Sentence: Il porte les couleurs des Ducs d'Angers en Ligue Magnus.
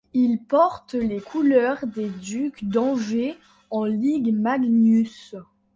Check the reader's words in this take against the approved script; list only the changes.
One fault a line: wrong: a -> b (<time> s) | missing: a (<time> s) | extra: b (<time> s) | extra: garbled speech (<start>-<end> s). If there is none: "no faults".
no faults